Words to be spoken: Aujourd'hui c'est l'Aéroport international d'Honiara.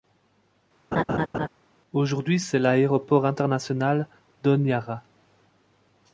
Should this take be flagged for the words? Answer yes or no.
no